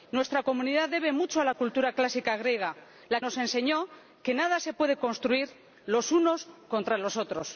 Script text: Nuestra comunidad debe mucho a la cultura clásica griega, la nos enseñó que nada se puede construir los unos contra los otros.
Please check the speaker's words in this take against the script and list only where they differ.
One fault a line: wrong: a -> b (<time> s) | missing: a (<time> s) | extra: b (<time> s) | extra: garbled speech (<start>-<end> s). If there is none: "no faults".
no faults